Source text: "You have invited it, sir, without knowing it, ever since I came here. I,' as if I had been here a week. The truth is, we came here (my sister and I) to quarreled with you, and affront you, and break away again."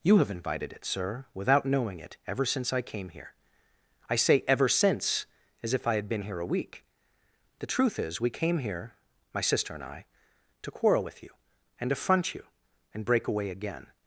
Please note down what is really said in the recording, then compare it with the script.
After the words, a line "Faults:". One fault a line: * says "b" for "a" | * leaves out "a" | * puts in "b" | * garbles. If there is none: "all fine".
"You have invited it, sir, without knowing it, ever since I came here. I say 'ever since,' as if I had been here a week. The truth is, we came here (my sister and I) to quarrel with you, and affront you, and break away again."
Faults:
* puts in "say ever since"
* says "quarrel" for "quarreled"